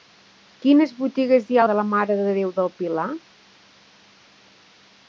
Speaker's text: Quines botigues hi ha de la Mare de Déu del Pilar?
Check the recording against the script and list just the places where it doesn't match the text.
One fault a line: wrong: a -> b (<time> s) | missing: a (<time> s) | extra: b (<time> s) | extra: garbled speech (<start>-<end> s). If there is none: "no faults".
no faults